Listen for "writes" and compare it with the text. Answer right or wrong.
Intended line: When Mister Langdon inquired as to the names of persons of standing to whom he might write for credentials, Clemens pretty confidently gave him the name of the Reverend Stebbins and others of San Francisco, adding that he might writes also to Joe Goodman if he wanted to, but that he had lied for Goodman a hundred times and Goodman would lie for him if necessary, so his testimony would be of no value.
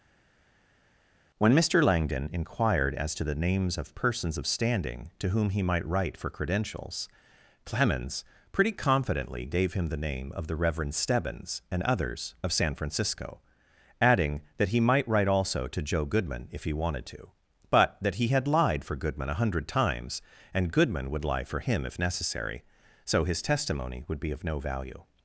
wrong